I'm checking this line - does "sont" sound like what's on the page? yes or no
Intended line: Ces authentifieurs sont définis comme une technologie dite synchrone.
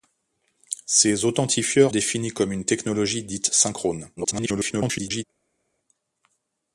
no